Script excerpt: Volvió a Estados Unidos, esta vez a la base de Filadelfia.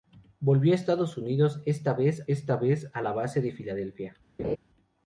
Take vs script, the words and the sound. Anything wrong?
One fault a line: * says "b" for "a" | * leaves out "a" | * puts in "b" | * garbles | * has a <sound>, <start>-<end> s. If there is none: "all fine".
* puts in "esta vez"
* has a laugh, 4.4-4.6 s